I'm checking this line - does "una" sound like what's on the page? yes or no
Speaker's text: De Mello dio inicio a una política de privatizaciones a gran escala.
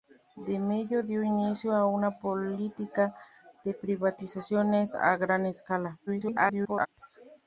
yes